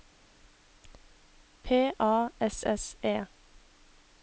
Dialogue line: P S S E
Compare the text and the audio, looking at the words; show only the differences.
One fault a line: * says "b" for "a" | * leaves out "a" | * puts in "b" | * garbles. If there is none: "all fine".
* puts in "A"